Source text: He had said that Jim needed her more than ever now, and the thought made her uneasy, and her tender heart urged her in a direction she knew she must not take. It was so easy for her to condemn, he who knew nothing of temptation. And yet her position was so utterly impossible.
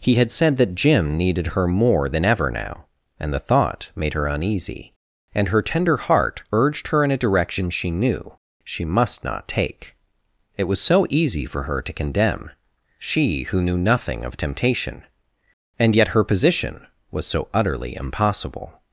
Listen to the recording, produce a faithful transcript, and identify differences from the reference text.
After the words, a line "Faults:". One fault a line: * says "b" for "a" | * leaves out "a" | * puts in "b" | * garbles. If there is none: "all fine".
He had said that Jim needed her more than ever now, and the thought made her uneasy, and her tender heart urged her in a direction she knew she must not take. It was so easy for her to condemn, she who knew nothing of temptation. And yet her position was so utterly impossible.
Faults:
* says "she" for "he"